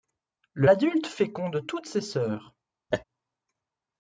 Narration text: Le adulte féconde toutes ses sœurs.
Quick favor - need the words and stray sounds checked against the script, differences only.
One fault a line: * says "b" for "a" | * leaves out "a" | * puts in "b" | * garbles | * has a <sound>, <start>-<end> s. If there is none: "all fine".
* has a laugh, 2.9-3.0 s